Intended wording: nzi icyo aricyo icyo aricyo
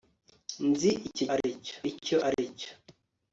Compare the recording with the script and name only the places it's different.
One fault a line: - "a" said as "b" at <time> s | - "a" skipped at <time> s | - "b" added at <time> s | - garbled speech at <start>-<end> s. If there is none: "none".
none